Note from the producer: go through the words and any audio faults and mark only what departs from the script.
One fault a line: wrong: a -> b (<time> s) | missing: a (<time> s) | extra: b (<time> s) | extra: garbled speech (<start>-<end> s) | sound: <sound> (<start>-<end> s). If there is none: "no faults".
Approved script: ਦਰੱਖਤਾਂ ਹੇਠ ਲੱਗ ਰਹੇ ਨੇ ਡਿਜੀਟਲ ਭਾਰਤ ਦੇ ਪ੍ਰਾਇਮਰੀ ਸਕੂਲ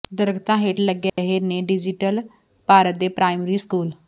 sound: dropout (1.1-1.2 s)